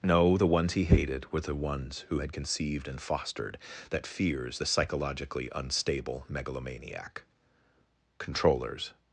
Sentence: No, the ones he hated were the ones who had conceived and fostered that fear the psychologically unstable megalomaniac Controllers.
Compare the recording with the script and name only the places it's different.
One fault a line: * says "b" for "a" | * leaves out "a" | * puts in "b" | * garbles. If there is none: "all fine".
* says "fears" for "fear"